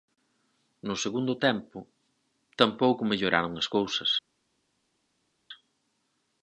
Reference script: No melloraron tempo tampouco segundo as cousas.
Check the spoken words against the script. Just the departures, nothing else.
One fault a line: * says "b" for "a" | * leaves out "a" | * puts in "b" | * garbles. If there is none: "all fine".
* says "segundo" for "melloraron"
* says "melloraron" for "segundo"